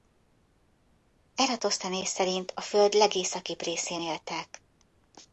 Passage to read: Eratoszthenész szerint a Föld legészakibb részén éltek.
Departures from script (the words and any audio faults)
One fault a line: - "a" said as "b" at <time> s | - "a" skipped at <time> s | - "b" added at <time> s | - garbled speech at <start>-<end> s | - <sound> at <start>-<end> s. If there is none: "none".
none